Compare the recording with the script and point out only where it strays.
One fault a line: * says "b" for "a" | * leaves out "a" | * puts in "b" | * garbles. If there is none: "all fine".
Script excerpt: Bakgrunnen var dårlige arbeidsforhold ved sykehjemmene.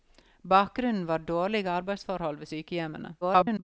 * garbles